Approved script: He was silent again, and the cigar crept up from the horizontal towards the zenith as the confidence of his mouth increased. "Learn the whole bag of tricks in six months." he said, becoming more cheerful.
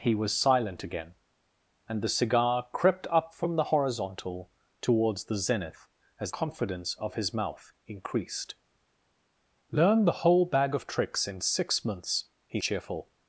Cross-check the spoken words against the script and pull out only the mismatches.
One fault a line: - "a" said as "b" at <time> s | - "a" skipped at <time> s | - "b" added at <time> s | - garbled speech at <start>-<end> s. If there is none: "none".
- "the" skipped at 6.3 s
- "said becoming more" skipped at 12.6 s